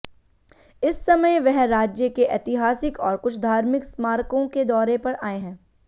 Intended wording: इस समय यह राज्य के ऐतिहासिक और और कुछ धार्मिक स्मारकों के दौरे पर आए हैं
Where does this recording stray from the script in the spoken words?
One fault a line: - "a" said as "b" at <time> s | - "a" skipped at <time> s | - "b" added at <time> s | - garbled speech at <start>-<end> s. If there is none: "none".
- "यह" said as "वह" at 1.4 s
- "और" skipped at 3.2 s